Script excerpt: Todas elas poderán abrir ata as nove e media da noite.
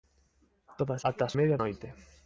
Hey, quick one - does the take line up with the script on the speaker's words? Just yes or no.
no